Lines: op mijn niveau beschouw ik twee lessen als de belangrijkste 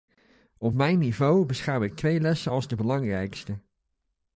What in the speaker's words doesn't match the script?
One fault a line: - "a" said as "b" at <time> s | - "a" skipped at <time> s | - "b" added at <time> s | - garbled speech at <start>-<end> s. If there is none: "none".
none